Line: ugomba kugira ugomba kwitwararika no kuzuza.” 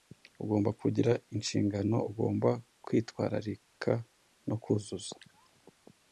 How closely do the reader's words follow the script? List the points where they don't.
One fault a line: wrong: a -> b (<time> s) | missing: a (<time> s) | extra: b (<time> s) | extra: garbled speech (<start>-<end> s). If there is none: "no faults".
extra: inshingano (1.4 s)